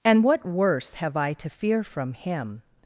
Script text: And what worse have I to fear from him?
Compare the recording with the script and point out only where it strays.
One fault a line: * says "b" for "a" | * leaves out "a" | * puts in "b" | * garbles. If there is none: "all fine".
all fine